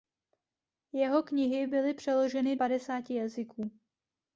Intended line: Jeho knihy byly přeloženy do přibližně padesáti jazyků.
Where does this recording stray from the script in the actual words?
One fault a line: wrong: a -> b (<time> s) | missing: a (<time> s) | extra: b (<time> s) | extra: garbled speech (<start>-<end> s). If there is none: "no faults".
missing: do přibližně (2.5 s)